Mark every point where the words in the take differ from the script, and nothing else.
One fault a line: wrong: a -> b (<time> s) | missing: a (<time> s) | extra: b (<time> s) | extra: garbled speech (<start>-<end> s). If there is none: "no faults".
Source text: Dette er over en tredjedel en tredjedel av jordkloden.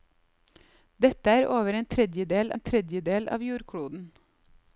no faults